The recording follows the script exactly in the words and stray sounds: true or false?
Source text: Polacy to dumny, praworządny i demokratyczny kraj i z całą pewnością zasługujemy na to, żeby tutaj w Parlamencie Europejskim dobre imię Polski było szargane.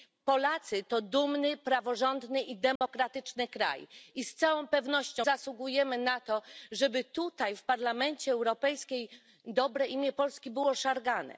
false